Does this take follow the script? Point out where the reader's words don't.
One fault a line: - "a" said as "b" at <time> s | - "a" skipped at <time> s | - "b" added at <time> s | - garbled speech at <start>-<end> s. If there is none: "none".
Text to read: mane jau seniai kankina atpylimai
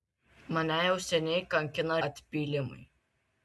none